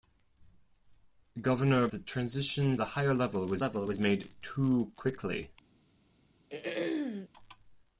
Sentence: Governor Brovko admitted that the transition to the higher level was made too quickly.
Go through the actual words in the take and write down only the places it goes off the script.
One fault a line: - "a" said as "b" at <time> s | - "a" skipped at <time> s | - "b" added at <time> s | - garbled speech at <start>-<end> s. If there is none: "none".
- "Brovko admitted that" skipped at 1.9 s
- "to" skipped at 2.8 s
- "level was" added at 3.6 s